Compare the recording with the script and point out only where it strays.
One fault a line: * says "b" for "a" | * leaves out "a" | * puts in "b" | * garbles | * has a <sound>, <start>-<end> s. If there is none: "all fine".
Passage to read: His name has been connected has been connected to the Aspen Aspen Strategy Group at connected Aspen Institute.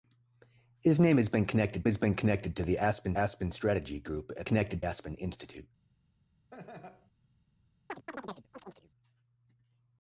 * has a laugh, 6.5-7.1 s
* has a chirp, 7.9-8.9 s